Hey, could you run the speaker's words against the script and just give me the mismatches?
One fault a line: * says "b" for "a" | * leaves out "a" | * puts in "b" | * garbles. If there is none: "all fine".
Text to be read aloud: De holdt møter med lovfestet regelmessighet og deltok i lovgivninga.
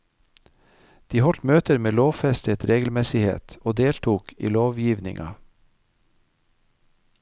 all fine